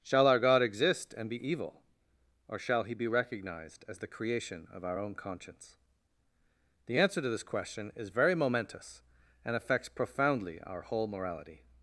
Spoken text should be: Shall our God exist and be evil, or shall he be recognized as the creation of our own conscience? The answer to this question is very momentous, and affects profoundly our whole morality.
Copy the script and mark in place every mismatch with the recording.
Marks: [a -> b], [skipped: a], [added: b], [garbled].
Shall our God exist and be evil, or shall he be recognized as the creation of our own conscience? The answer to this question is very momentous, and affects profoundly our whole morality.